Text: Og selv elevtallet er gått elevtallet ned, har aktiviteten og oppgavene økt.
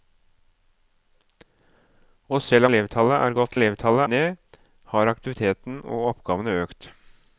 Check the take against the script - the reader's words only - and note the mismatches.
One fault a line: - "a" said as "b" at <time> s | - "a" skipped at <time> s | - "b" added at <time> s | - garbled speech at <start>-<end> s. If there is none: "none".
none